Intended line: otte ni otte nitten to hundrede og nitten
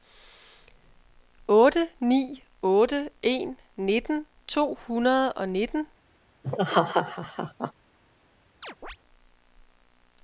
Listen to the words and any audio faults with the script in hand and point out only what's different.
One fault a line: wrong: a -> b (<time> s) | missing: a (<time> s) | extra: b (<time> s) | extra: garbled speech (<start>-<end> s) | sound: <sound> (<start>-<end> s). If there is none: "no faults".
extra: en (3.2 s)
sound: laugh (6.4-7.7 s)
sound: chirp (8.6-9.0 s)